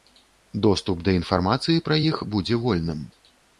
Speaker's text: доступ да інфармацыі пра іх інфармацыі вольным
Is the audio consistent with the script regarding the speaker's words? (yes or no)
no